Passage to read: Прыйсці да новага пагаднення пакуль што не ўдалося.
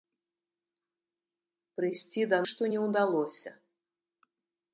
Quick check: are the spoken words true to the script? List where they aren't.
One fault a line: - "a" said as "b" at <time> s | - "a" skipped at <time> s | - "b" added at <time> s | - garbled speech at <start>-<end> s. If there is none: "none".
- "новага пагаднення пакуль" skipped at 2.4 s